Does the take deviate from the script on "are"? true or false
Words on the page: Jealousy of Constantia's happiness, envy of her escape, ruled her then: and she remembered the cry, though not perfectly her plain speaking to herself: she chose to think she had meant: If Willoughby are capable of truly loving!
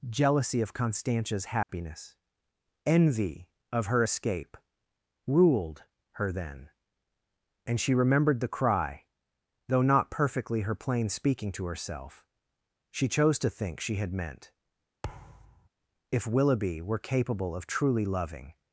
true